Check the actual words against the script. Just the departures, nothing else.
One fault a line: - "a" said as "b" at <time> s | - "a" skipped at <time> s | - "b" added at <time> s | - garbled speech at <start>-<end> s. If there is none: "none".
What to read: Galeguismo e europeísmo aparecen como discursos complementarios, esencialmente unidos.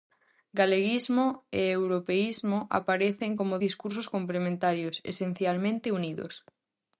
none